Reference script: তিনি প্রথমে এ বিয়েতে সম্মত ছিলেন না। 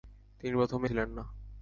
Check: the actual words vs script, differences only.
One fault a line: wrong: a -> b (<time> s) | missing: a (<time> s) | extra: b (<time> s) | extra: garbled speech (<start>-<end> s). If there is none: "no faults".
missing: এ বিয়েতে সম্মত (0.9 s)